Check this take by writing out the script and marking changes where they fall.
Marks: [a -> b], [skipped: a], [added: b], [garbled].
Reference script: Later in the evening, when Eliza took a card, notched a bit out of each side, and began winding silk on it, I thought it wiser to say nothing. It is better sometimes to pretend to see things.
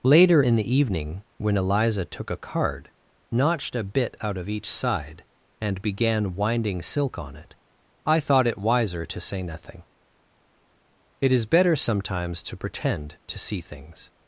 Later in the evening, when Eliza took a card, notched a bit out of each side, and began winding silk on it, I thought it wiser to say nothing. It is better sometimes to pretend to see things.